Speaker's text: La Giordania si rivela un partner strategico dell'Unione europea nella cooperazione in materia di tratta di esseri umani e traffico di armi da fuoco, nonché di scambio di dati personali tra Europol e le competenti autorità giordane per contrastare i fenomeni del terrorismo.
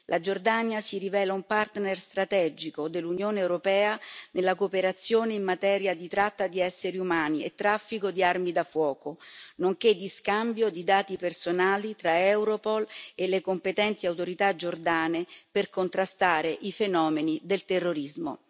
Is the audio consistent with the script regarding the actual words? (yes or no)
yes